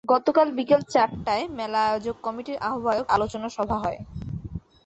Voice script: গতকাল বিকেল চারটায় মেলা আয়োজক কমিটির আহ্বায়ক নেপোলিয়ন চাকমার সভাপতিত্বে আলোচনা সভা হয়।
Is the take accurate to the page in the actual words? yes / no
no